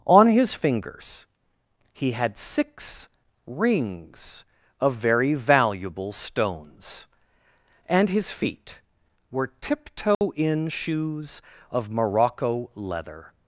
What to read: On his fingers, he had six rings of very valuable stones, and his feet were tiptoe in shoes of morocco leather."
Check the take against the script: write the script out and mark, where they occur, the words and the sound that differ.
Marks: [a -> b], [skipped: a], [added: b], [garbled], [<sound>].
On his fingers, he had six rings of very valuable stones, and his feet were tiptoe [dropout] in shoes of morocco leather."